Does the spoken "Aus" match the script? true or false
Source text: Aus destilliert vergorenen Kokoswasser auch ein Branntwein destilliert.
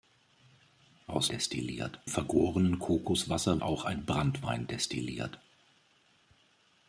true